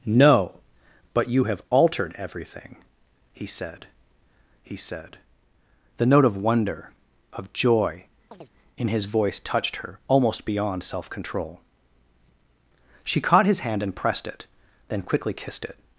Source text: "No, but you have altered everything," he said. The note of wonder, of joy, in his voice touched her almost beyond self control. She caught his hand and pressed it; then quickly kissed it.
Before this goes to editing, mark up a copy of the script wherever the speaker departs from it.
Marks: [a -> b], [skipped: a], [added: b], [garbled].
"No, but you have altered everything," he said. [added: he said] The note of wonder, of joy, in his voice touched her almost beyond self control. She caught his hand and pressed it; then quickly kissed it.